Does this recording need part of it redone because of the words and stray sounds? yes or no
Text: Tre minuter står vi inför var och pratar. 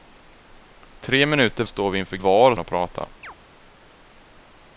yes